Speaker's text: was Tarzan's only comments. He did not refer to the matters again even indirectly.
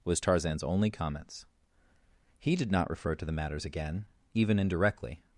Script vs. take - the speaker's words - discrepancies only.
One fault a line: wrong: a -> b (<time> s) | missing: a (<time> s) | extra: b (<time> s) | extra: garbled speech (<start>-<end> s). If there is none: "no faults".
no faults